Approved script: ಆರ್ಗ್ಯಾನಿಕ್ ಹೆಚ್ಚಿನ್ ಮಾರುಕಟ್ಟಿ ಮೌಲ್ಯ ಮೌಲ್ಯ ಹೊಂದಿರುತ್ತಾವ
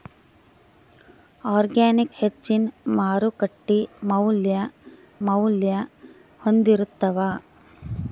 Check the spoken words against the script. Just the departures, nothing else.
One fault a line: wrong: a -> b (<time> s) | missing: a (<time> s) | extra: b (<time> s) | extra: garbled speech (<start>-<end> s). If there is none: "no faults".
no faults